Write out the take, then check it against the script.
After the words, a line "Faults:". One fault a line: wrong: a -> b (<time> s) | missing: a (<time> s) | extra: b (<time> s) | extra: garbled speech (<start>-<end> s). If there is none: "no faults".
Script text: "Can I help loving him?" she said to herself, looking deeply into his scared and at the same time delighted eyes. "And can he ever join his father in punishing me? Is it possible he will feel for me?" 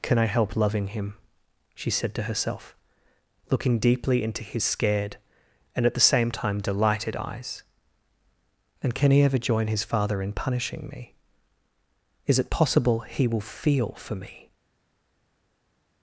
"Can I help loving him?" she said to herself, looking deeply into his scared and at the same time delighted eyes. "And can he ever join his father in punishing me? Is it possible he will feel for me?"
Faults:
no faults